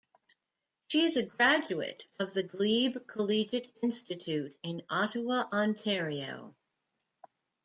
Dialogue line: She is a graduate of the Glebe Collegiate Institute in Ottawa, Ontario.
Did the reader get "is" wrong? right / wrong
right